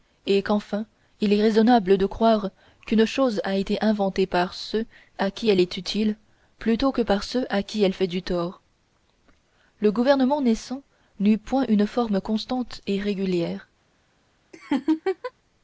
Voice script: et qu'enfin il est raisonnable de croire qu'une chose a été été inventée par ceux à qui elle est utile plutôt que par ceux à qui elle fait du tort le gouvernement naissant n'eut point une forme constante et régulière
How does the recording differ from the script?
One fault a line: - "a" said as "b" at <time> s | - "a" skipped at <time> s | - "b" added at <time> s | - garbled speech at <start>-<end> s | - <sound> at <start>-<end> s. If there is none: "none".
- "été" skipped at 3.8 s
- laugh at 14.5-15.3 s